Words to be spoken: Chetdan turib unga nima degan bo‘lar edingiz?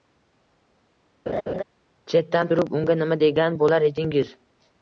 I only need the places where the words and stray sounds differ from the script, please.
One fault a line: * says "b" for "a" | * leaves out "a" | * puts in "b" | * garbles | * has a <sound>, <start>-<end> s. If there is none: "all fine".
* has a laugh, 1.3-1.6 s